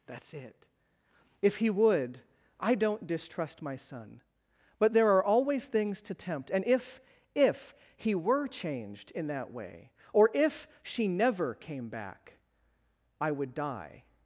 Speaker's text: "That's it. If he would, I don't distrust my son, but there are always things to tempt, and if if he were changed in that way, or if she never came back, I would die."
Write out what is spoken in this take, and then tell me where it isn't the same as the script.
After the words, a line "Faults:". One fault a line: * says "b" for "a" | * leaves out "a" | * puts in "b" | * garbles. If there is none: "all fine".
"That's it. If he would, I don't distrust my son, but there are always things to tempt, and if if he were changed in that way, or if she never came back, I would die."
Faults:
all fine